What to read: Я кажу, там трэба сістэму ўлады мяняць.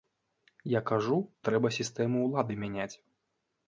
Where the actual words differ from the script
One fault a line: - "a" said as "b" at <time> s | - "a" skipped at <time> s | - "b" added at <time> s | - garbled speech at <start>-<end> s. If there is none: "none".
- "там" skipped at 1.2 s